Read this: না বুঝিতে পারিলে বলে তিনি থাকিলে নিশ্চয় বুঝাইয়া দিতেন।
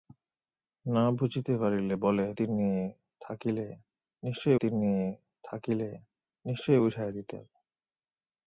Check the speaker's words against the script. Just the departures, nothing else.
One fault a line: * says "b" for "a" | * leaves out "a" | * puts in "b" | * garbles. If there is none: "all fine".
* puts in "তিনি থাকিলে নিশ্চয়"